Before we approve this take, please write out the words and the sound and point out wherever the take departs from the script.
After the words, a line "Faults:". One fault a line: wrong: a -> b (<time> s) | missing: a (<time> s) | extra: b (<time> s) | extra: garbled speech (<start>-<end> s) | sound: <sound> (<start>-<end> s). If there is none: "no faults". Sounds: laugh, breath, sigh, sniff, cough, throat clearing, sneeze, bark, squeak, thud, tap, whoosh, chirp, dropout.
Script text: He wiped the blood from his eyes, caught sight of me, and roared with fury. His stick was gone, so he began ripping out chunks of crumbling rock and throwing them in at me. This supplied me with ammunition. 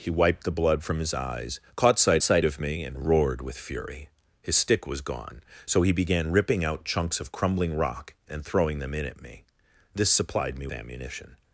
He wiped the blood from his eyes, caught sight sight of me, and roared with fury. His stick was gone, so he began ripping out chunks of crumbling rock and throwing them in at me. This supplied me ammunition.
Faults:
extra: sight (2.2 s)
missing: with (10.7 s)